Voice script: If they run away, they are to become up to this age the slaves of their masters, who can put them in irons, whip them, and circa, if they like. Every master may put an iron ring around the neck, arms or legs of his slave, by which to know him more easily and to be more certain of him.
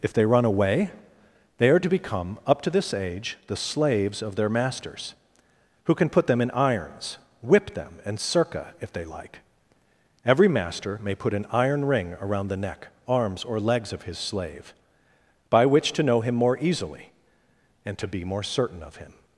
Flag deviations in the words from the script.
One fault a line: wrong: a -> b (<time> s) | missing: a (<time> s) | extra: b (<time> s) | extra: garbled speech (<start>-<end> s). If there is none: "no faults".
no faults